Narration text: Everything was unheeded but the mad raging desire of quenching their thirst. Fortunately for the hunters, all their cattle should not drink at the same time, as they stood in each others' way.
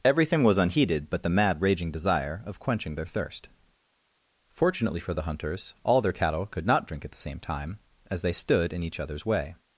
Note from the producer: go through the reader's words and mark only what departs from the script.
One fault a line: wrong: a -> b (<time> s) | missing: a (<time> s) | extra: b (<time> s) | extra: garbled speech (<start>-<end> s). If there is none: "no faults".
wrong: should -> could (6.5 s)